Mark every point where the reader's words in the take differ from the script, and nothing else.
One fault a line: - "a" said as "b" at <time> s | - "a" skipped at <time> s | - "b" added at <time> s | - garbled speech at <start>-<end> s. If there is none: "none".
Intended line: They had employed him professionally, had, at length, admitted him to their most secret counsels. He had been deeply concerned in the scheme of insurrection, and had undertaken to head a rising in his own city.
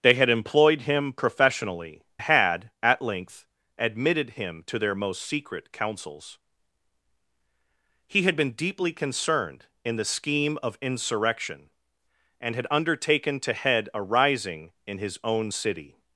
none